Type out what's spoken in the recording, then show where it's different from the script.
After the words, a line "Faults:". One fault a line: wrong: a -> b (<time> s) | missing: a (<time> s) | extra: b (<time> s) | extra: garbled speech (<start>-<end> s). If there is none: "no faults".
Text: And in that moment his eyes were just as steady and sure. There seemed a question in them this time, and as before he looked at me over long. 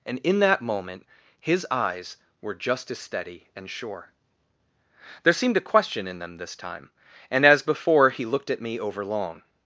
And in that moment his eyes were just as steady and sure. There seemed a question in them this time, and as before he looked at me over long.
Faults:
no faults